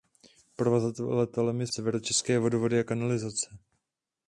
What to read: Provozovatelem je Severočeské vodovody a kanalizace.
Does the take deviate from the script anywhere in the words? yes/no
no